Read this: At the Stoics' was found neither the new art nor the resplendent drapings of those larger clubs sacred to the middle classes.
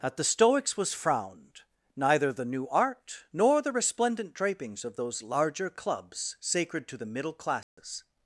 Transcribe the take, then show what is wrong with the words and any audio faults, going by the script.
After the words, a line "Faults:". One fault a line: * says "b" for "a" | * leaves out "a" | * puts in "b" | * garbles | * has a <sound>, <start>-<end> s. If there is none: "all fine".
At the Stoics' was frowned neither the new art nor the resplendent drapings of those larger clubs sacred to the middle classes.
Faults:
* says "frowned" for "found"
* has a dropout, 7.6-7.8 s